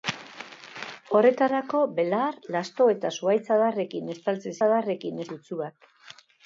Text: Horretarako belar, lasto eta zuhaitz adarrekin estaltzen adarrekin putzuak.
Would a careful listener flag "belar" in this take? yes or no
no